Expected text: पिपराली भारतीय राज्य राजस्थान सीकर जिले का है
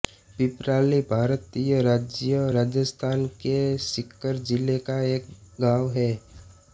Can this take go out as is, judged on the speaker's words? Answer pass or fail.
fail